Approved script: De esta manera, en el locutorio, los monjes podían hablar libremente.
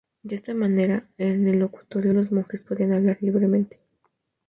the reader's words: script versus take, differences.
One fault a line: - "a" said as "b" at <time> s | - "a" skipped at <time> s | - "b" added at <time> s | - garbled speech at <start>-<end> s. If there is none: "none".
none